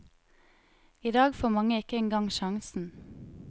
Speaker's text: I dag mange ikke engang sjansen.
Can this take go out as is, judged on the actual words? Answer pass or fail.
fail